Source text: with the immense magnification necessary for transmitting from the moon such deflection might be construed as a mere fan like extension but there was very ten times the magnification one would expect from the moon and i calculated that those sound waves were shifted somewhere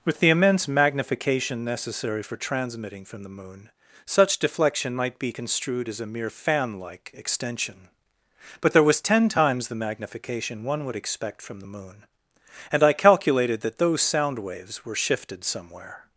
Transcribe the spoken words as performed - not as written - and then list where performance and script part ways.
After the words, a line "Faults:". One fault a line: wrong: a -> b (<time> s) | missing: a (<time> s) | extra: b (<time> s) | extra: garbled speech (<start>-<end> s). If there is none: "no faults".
with the immense magnification necessary for transmitting from the moon such deflection might be construed as a mere fan like extension but there was ten times the magnification one would expect from the moon and i calculated that those sound waves were shifted somewhere
Faults:
missing: very (9.0 s)